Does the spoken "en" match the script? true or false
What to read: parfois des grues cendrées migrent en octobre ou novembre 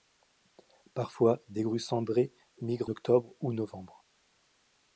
false